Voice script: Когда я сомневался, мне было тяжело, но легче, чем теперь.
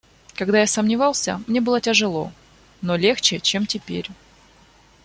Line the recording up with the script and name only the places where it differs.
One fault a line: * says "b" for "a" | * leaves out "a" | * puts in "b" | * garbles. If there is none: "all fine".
all fine